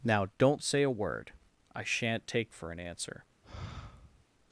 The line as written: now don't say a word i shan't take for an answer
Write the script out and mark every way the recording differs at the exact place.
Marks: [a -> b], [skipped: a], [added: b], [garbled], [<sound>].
now don't say a word i shan't take for an answer [sigh]